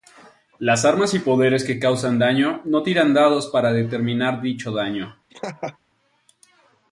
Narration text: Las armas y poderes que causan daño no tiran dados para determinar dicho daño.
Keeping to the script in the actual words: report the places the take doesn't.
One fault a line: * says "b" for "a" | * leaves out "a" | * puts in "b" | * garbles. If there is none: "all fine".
all fine